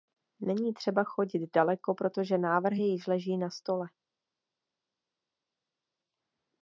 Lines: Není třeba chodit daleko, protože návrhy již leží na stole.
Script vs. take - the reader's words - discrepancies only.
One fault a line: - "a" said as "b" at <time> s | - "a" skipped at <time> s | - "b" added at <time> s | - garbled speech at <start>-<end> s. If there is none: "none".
none